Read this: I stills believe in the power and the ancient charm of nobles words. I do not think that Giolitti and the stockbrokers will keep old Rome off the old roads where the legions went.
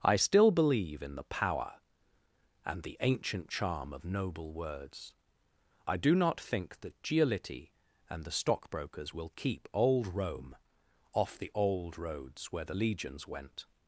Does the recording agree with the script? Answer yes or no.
no